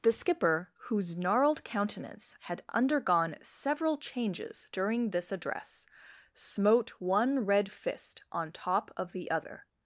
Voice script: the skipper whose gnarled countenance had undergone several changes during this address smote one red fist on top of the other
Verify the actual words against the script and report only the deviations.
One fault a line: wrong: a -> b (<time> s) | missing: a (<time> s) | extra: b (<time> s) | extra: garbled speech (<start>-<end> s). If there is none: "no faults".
no faults